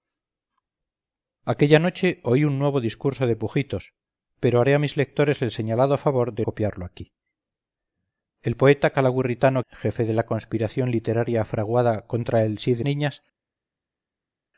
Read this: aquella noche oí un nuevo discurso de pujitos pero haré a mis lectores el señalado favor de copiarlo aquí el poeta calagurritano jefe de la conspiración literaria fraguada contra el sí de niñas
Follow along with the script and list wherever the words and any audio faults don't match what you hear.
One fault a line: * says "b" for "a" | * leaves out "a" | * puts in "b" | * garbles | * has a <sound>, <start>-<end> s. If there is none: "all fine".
all fine